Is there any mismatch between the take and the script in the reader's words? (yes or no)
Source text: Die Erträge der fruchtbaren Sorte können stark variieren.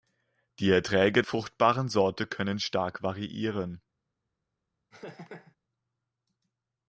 yes